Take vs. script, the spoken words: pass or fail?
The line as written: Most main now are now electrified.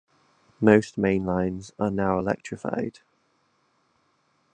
fail